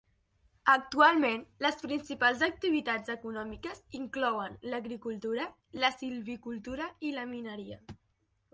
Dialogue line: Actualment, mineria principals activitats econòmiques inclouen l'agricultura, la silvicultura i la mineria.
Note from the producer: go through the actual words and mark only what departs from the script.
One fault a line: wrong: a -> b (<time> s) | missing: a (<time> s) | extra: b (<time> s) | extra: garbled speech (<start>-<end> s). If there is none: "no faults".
wrong: mineria -> les (1.7 s)